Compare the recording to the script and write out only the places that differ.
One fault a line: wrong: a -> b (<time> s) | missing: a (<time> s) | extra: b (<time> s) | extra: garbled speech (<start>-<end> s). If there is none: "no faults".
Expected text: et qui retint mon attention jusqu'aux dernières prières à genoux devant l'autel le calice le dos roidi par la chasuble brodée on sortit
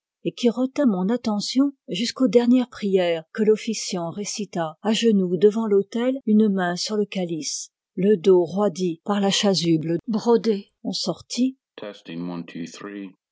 extra: que l'officiant récita (3.3 s)
extra: une main sur (6.3 s)